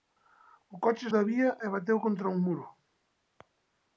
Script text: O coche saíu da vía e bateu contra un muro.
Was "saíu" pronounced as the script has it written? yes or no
no